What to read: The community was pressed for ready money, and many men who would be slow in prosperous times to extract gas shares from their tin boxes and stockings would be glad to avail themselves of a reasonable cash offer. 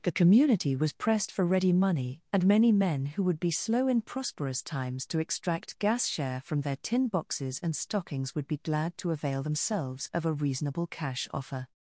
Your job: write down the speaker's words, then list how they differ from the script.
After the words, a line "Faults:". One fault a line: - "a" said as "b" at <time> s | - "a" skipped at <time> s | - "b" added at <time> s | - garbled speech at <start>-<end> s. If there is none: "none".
The community was pressed for ready money, and many men who would be slow in prosperous times to extract gas share from their tin boxes and stockings would be glad to avail themselves of a reasonable cash offer.
Faults:
- "shares" said as "share" at 6.1 s